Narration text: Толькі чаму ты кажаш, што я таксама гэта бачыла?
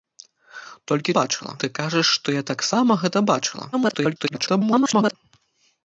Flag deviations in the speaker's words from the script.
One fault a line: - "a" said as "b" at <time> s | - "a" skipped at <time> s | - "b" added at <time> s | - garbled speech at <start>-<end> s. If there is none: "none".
- "чаму" said as "бачыла" at 1.2 s
- garbled speech at 3.7-5.1 s